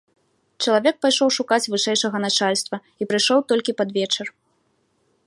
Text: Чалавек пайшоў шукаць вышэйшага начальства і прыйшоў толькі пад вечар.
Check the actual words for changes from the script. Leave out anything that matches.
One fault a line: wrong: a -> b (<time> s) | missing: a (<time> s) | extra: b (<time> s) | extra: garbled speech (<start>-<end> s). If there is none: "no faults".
no faults